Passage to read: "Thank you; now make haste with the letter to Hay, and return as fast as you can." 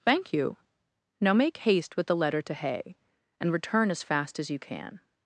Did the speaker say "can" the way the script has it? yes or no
yes